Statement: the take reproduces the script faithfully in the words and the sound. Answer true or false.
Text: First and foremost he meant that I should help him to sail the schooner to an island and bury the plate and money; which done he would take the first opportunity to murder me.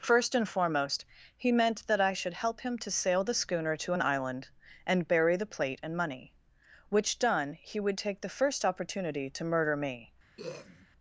false